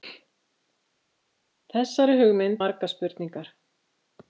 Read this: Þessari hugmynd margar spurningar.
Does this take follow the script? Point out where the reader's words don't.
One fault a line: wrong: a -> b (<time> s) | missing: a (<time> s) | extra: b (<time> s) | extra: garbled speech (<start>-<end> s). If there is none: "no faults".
no faults